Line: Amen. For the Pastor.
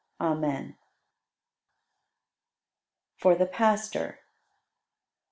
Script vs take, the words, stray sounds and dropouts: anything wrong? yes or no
no